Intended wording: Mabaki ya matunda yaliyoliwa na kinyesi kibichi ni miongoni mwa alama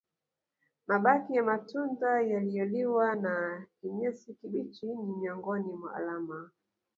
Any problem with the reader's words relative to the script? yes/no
no